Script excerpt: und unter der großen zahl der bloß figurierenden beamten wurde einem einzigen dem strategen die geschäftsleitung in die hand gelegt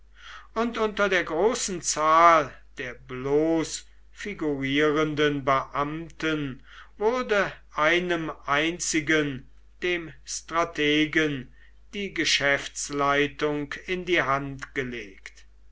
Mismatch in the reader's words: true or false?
false